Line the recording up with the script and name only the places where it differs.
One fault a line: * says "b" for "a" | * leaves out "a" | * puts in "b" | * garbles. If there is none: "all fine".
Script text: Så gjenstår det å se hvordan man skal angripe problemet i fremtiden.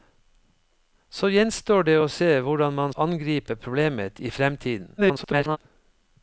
* leaves out "skal"
* garbles